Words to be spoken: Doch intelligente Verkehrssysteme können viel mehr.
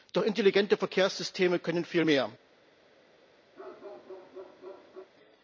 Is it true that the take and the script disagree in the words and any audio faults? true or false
true